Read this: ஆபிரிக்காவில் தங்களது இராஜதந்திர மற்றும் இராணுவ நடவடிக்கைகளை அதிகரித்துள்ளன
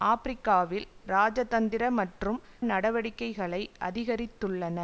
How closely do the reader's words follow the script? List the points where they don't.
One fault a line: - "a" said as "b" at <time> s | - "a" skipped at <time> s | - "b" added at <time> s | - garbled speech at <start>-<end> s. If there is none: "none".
- "தங்களது" skipped at 0.9 s
- "இராணுவ" skipped at 2.4 s